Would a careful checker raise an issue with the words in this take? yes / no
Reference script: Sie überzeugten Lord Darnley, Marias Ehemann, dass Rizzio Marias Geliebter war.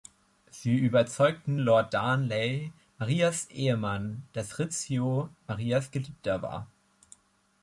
no